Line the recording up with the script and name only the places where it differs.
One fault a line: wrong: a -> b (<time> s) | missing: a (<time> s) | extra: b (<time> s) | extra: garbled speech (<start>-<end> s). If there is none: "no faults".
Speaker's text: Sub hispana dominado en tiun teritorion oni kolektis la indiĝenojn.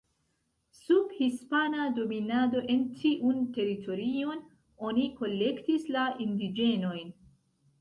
no faults